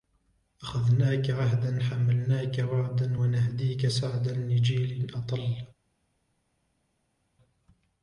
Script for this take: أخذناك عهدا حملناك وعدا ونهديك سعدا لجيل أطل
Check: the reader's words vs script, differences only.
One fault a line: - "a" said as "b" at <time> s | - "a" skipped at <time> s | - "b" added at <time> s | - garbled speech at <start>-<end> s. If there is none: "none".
none